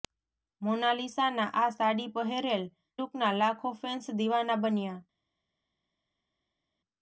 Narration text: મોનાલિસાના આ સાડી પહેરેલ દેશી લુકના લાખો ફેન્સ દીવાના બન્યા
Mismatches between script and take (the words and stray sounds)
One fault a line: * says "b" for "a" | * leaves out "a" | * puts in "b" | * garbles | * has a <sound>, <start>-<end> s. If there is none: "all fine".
* leaves out "દેશી"